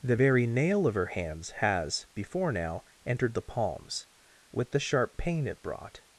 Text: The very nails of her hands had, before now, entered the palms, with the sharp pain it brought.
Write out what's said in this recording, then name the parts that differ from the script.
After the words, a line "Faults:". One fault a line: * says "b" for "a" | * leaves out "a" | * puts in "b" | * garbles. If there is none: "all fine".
The very nail of her hands has, before now, entered the palms, with the sharp pain it brought.
Faults:
* says "nail" for "nails"
* says "has" for "had"